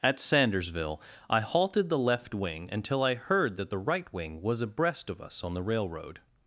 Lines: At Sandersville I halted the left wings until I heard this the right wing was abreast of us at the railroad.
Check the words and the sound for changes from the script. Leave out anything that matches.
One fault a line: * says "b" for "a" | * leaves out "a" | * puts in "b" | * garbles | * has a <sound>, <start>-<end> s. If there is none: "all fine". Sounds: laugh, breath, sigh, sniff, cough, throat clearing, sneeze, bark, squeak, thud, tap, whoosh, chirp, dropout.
* says "wing" for "wings"
* says "that" for "this"
* says "on" for "at"